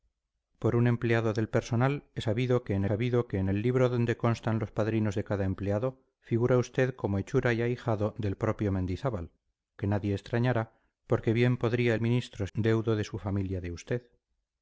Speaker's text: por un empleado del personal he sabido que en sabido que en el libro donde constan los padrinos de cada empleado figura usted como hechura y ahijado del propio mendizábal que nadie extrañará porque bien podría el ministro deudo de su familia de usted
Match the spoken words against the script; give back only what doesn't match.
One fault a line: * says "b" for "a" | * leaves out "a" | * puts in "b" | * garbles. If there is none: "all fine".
all fine